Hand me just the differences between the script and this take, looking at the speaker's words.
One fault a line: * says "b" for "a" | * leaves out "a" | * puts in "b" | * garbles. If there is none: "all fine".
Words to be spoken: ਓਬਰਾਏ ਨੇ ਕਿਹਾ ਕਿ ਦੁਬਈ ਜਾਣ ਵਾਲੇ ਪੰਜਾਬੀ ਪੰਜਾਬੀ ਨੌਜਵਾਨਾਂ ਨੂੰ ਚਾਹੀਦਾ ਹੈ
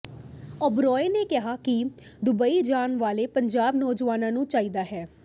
* leaves out "ਪੰਜਾਬੀ"